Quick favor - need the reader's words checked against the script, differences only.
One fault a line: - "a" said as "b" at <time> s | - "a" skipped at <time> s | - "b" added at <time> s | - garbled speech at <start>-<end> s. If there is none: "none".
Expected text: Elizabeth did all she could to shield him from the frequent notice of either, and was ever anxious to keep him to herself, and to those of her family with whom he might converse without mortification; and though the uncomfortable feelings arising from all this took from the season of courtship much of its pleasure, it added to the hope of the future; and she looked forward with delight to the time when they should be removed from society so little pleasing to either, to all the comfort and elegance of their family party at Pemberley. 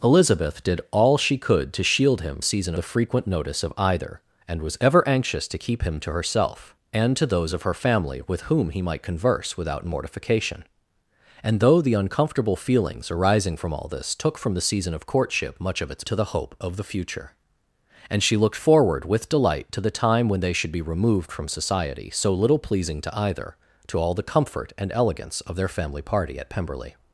- "from" said as "season" at 2.4 s
- "pleasure it added" skipped at 16.0 s